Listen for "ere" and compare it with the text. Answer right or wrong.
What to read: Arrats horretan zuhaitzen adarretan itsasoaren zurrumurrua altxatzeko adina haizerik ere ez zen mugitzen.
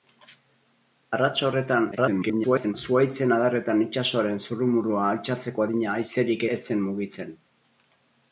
wrong